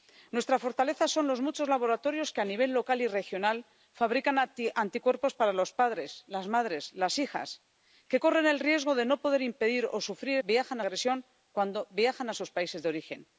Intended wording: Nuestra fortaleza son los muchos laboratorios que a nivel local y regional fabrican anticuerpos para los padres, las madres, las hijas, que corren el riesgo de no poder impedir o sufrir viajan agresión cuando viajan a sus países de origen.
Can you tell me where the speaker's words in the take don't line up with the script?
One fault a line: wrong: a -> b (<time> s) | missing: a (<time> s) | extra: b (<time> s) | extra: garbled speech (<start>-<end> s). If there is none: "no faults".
no faults